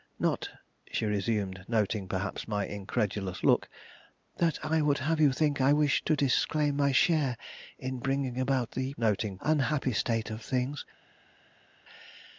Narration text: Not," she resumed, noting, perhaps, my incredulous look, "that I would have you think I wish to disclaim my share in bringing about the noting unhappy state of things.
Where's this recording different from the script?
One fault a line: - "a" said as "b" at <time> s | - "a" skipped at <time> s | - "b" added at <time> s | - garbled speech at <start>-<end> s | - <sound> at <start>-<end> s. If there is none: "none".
none